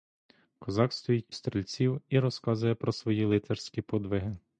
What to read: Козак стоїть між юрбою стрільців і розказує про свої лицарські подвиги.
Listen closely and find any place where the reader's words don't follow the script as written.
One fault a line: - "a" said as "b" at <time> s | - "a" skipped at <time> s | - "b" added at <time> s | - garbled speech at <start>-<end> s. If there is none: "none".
- "між юрбою" skipped at 1.4 s